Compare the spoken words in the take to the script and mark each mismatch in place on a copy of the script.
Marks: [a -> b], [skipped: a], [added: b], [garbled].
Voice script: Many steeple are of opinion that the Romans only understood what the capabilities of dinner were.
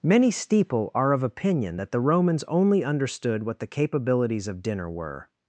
Many steeple are of opinion that the Romans only understood what the capabilities of dinner were.